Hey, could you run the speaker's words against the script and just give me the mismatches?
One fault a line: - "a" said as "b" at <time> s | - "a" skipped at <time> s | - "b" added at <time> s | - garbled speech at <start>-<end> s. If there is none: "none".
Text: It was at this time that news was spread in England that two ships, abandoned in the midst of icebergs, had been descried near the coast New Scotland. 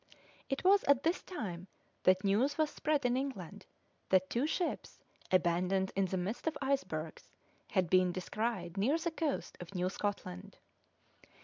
- "of" added at 9.6 s